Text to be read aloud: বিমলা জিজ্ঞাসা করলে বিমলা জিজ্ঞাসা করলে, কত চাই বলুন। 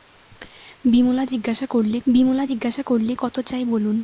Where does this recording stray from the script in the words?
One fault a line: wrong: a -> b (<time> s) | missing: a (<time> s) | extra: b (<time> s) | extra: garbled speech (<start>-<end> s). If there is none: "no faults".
no faults